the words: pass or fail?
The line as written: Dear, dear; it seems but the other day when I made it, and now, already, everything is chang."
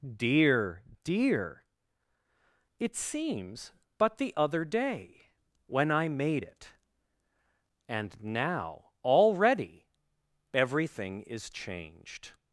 fail